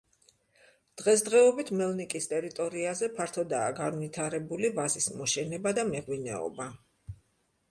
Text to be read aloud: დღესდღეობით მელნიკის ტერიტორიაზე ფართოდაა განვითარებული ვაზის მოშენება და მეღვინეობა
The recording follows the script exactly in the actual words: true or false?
true